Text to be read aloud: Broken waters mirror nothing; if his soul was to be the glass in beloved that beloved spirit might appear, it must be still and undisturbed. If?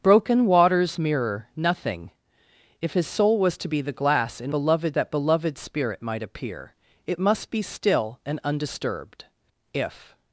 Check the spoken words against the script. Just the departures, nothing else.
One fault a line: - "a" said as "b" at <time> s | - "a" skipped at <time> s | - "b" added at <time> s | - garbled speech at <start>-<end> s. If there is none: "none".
none